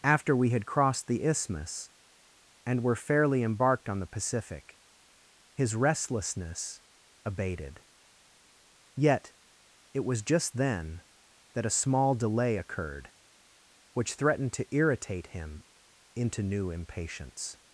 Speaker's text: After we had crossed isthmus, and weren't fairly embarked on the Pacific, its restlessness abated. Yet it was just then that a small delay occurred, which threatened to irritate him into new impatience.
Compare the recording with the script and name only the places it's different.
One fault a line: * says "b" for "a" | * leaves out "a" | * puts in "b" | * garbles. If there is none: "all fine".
* puts in "the"
* says "were" for "weren't"
* says "his" for "its"